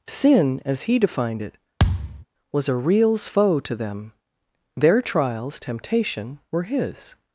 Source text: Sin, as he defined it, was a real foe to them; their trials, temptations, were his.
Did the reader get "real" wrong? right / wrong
wrong